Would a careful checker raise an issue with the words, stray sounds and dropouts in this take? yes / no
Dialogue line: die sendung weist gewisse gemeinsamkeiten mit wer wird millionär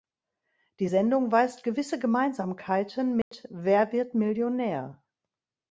yes